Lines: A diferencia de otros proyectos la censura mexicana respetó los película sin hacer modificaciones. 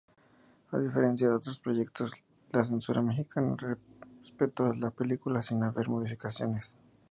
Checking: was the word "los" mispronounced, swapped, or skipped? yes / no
yes